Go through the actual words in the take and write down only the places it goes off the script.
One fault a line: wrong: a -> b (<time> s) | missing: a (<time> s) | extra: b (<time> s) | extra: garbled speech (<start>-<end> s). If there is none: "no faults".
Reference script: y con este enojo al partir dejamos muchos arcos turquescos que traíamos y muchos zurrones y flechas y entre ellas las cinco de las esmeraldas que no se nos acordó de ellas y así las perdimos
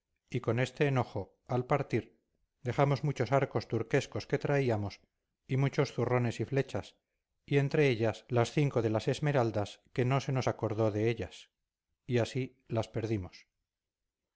no faults